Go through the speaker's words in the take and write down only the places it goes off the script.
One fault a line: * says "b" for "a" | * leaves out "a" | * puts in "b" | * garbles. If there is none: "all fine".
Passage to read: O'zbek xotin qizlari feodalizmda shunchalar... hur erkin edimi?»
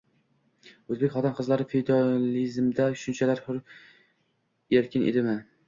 all fine